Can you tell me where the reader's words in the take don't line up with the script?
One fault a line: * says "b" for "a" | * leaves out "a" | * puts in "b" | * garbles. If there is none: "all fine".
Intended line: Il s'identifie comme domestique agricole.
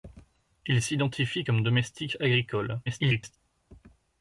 * garbles